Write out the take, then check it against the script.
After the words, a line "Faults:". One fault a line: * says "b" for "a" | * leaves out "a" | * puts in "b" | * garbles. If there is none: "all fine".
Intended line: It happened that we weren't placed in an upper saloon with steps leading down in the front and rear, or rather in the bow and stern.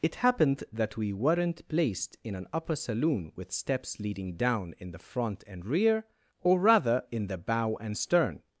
It happened that we weren't placed in an upper saloon with steps leading down in the front and rear, or rather in the bow and stern.
Faults:
all fine